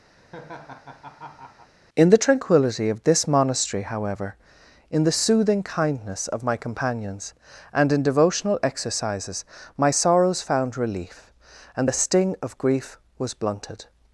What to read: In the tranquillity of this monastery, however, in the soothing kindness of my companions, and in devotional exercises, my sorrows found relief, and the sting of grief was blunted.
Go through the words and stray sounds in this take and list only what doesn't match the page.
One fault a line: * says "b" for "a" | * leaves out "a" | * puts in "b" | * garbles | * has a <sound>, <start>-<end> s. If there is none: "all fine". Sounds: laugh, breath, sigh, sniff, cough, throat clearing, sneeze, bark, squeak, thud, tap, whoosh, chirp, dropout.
* has a laugh, 0.2-1.7 s